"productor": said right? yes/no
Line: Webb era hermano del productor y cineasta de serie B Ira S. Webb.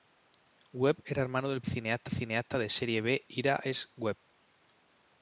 no